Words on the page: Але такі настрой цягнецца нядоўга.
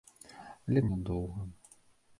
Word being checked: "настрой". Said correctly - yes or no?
no